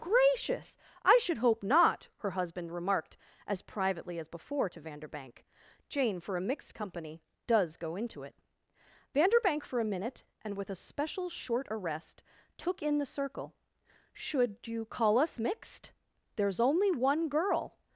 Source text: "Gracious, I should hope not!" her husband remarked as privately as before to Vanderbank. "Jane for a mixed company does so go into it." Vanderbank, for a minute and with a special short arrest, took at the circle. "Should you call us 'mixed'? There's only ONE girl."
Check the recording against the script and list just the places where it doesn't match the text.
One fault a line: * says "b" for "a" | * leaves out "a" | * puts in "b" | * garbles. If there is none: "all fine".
* leaves out "so"
* says "in" for "at"